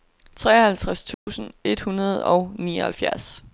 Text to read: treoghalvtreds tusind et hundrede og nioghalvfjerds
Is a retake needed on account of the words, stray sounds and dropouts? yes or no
yes